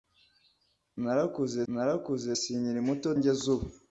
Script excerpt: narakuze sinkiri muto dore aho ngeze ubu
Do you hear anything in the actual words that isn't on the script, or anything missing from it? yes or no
yes